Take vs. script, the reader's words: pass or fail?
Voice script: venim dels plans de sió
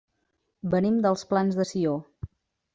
pass